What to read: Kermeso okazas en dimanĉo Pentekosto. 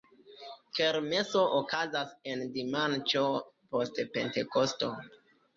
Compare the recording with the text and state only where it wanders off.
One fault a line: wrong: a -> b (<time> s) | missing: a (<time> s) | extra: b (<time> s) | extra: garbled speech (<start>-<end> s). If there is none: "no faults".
extra: post (3.7 s)